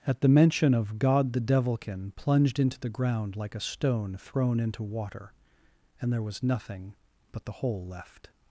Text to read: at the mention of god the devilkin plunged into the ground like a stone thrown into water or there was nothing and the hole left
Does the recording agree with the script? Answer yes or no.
no